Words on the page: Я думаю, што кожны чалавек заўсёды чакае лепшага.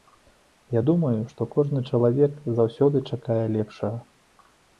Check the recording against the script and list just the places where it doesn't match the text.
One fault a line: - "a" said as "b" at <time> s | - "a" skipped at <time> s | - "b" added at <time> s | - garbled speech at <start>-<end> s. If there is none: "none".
none